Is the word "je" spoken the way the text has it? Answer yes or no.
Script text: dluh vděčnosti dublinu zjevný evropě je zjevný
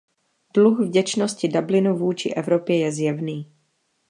yes